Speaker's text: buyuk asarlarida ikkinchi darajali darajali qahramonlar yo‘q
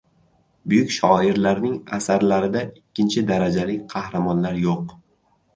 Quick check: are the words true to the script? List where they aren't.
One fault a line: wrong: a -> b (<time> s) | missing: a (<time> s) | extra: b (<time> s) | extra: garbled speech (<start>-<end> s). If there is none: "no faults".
extra: shoirlarning (0.9 s)
missing: darajali (3.8 s)